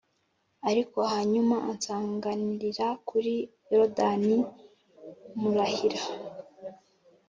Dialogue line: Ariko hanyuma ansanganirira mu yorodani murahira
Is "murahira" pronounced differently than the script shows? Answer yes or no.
no